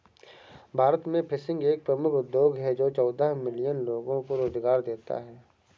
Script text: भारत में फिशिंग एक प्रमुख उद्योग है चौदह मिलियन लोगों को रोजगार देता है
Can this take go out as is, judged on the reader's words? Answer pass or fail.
fail